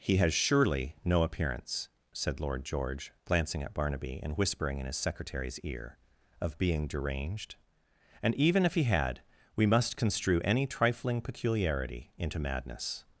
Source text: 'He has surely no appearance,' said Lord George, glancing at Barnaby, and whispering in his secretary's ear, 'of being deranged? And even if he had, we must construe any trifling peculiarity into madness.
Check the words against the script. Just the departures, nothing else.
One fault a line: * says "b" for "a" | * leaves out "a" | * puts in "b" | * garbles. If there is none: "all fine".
all fine